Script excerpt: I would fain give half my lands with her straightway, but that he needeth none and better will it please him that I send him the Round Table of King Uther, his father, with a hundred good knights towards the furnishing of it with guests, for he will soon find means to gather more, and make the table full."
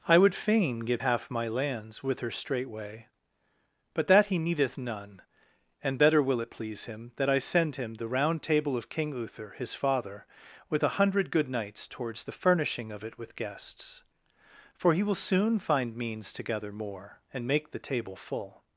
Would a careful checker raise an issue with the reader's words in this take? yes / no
no